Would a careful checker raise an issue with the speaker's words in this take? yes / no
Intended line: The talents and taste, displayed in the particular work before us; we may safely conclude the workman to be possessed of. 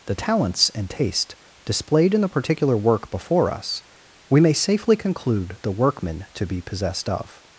no